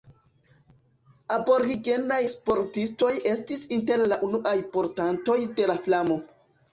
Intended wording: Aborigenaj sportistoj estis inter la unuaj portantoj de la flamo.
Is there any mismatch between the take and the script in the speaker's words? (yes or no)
no